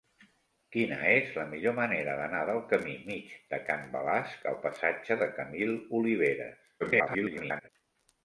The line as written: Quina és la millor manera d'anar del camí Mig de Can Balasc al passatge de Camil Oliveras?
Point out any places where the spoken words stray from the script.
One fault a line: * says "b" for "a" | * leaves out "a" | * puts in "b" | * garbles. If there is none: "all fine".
* garbles